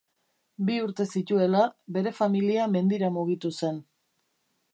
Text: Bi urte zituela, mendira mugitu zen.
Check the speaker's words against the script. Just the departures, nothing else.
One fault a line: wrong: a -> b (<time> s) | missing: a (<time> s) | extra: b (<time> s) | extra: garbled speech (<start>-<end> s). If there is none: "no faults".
extra: bere familia (2.0 s)